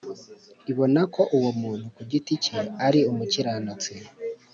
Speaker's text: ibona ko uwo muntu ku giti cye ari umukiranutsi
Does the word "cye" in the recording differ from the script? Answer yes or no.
no